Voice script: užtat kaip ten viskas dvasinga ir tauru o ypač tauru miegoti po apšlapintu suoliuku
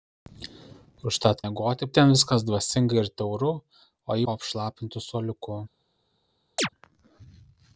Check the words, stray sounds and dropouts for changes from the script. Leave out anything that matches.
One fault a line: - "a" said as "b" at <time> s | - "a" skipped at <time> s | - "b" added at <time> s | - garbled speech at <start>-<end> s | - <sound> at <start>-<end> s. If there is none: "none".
- "kaip" said as "miegoti" at 1.4 s
- "ypač tauru miegoti" skipped at 4.2 s
- chirp at 6.6-6.7 s